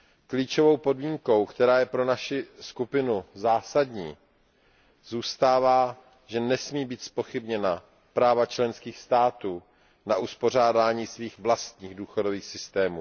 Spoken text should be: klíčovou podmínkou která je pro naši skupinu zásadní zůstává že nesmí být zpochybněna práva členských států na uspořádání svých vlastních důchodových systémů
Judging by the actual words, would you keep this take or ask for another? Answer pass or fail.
pass